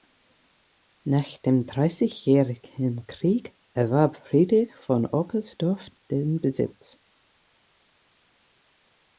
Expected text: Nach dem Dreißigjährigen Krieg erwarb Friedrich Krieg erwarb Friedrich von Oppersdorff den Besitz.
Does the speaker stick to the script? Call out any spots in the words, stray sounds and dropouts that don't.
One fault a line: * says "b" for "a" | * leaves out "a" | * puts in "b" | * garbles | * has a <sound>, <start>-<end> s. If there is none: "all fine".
* leaves out "Krieg erwarb Friedrich"